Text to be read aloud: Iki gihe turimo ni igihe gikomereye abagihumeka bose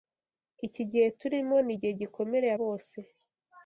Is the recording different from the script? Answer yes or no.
yes